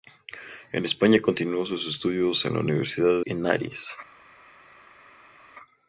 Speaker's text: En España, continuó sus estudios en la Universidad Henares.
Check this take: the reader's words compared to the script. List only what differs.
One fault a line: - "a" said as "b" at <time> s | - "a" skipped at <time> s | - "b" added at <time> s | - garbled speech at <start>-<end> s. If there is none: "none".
none